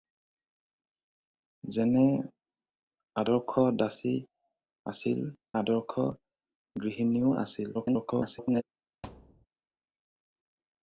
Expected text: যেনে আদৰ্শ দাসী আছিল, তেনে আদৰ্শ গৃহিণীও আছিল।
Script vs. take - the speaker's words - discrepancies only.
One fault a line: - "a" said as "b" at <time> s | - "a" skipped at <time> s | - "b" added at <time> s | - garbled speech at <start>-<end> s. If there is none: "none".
- "তেনে" skipped at 5.2 s
- garbled speech at 7.7-8.6 s